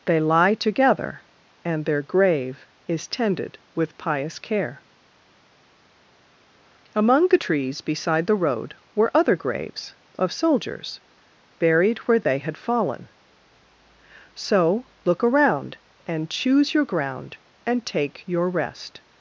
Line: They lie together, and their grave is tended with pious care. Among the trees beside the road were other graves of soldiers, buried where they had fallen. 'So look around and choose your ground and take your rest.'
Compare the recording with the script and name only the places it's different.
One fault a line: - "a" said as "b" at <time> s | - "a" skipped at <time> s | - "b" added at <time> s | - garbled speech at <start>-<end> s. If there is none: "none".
none